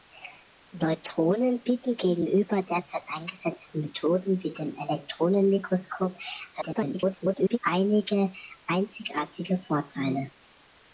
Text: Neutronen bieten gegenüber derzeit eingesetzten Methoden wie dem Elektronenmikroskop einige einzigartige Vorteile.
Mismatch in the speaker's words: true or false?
true